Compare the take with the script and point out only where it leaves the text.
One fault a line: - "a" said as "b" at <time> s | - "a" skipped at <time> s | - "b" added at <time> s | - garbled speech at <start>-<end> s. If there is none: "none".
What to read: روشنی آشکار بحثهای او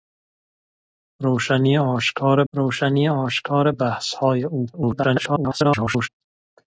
- "روشنی آشکار" added at 2.5 s
- garbled speech at 4.7-6.1 s